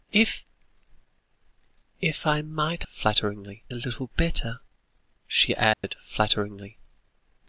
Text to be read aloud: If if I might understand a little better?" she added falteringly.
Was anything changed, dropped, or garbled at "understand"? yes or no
yes